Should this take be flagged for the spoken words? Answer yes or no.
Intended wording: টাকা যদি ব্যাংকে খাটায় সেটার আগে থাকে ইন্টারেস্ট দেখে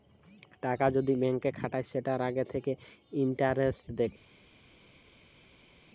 no